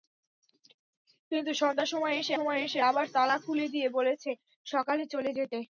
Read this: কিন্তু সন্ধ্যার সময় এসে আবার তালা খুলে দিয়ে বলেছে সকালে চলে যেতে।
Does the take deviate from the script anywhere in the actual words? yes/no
yes